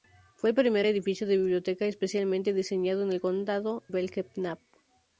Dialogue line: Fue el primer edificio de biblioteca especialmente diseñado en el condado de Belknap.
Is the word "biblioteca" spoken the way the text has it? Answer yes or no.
yes